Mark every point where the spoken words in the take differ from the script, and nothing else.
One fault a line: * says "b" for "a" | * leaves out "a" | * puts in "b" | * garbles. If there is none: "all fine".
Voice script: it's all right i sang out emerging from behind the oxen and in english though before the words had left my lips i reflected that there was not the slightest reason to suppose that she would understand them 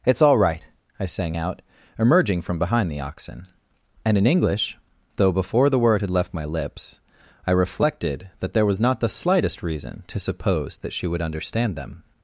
* says "word" for "words"